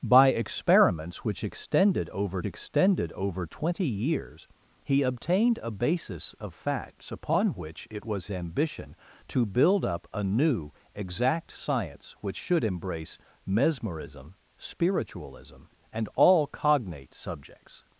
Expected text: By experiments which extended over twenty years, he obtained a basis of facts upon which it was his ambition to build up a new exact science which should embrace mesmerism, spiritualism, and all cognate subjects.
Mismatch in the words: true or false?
true